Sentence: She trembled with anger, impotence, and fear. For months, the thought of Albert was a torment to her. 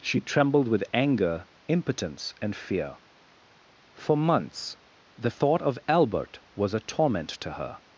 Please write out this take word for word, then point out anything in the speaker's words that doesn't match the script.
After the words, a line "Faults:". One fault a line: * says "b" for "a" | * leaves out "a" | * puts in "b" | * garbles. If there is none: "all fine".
She trembled with anger, impotence, and fear. For months, the thought of Albert was a torment to her.
Faults:
all fine